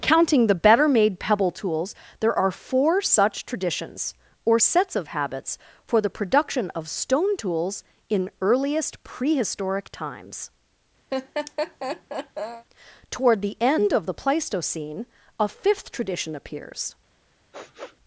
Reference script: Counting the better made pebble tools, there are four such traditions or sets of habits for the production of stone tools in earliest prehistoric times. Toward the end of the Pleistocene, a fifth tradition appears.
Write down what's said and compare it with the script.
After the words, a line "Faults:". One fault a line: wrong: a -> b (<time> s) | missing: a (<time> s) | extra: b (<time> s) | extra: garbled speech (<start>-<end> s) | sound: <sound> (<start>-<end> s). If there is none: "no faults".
Counting the better made pebble tools, there are four such traditions or sets of habits for the production of stone tools in earliest prehistoric times. Toward the end of the Pleistocene, a fifth tradition appears.
Faults:
sound: laugh (11.1-12.7 s)
sound: sniff (17.5-18.0 s)